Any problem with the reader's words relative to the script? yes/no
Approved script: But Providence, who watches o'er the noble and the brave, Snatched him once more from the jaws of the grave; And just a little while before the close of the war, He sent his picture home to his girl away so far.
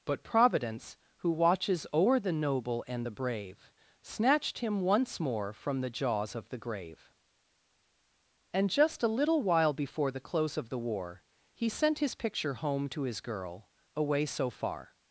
no